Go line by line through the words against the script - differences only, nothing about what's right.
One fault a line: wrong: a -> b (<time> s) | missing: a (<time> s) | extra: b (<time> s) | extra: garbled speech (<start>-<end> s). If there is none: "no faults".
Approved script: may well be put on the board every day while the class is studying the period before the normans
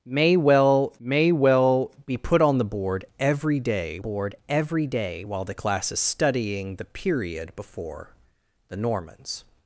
extra: may well (1.0 s)
extra: board every day (4.0 s)